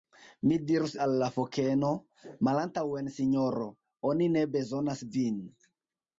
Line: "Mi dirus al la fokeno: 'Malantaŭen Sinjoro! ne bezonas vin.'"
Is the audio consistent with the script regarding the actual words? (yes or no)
no